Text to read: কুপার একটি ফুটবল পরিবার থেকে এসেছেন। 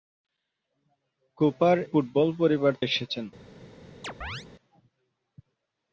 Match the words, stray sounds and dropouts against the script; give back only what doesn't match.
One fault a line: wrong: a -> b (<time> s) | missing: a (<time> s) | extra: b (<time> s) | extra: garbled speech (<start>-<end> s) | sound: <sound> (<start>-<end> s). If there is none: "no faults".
missing: একটি (1.8 s)
missing: থেকে (2.7 s)
sound: chirp (4.0-4.5 s)